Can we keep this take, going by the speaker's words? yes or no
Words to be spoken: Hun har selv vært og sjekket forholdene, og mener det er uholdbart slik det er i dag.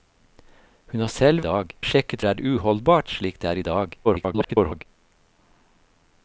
no